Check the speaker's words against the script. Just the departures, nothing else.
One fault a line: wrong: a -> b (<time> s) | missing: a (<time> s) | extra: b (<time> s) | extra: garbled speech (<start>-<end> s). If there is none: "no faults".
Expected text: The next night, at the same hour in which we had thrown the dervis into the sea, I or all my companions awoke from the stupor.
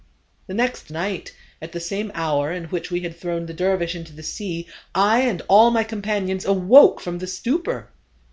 wrong: or -> and (5.2 s)